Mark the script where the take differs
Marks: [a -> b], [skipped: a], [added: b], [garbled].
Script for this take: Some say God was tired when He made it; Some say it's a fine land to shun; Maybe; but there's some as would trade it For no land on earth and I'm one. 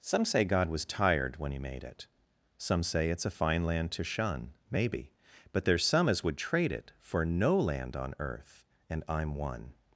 Some say God was tired when He made it; Some say it's a fine land to shun; Maybe; but there's some as would trade it For no land on earth and I'm one.